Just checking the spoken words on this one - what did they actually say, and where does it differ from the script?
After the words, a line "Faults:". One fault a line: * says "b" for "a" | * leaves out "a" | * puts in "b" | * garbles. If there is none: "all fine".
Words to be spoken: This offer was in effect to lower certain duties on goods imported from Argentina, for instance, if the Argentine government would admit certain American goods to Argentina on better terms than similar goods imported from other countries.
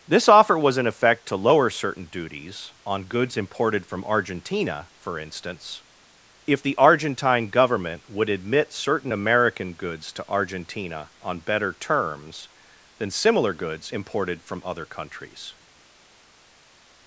This offer was in effect to lower certain duties on goods imported from Argentina, for instance, if the Argentine government would admit certain American goods to Argentina on better terms than similar goods imported from other countries.
Faults:
all fine